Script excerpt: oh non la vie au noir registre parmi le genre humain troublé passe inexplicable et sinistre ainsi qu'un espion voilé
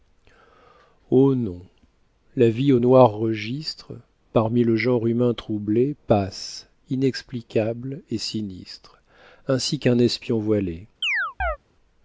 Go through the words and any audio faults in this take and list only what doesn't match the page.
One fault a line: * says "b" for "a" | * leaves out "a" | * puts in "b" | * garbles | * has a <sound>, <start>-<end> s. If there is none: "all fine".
* has a chirp, 11.0-11.6 s